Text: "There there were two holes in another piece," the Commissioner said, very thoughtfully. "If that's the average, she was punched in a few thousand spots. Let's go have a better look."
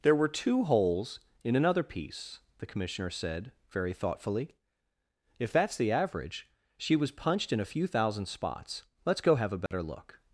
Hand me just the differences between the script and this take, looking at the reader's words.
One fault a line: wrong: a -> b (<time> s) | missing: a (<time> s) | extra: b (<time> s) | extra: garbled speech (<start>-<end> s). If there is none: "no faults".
missing: there (0.1 s)